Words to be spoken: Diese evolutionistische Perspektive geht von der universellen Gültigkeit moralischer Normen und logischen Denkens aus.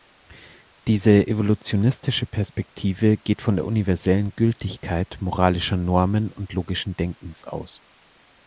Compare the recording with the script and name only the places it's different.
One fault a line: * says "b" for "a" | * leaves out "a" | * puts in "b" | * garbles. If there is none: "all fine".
all fine